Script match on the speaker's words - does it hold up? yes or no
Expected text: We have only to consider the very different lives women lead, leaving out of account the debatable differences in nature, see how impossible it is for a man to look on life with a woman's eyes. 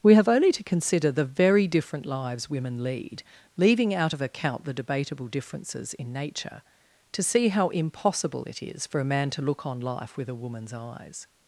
no